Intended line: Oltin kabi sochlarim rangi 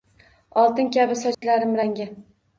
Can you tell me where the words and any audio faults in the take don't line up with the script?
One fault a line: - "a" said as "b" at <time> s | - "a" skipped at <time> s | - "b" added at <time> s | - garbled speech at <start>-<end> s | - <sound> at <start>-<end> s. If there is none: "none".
- dropout at 1.3-1.4 s